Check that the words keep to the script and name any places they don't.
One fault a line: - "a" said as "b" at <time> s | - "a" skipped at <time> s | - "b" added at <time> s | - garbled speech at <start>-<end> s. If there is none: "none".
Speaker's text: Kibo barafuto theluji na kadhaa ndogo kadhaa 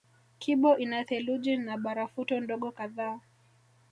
- "barafuto" said as "ina" at 0.8 s
- "kadhaa" said as "barafuto" at 1.8 s